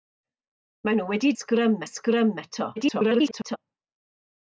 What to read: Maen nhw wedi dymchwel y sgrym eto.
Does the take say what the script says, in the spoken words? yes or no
no